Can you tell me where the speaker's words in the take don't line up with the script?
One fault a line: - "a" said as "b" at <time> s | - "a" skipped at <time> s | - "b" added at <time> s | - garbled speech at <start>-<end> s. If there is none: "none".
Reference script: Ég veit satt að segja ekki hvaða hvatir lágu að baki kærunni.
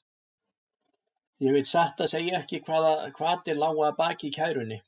none